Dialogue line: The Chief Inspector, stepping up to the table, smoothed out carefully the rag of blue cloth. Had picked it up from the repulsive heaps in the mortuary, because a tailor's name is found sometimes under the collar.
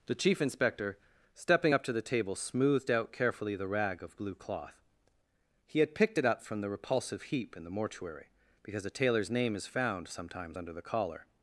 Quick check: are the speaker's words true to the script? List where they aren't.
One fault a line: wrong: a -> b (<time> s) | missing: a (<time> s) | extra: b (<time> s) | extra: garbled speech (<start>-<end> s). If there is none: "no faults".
extra: He (5.7 s)
wrong: heaps -> heap (7.2 s)